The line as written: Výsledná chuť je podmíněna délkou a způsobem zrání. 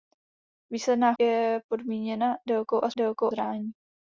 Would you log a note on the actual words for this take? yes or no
yes